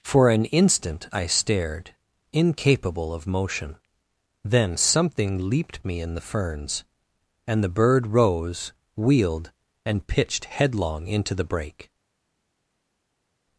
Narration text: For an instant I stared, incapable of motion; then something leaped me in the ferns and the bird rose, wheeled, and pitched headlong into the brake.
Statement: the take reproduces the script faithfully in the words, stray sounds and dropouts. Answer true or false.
true